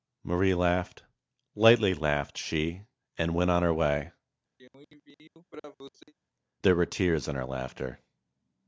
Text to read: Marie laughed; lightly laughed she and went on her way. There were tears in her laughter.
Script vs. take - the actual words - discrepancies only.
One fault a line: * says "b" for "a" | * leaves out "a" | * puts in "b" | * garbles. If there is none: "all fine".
all fine